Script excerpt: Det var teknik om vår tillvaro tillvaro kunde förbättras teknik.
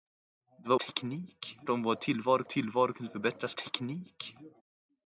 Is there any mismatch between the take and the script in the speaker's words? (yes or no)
no